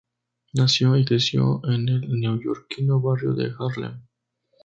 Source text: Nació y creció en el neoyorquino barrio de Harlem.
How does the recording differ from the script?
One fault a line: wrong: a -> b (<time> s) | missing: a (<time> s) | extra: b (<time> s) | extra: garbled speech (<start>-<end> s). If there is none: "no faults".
no faults